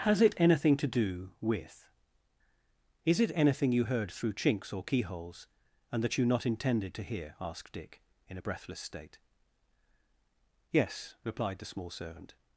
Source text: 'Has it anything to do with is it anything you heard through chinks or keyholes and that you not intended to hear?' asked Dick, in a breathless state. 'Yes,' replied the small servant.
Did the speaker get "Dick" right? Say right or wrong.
right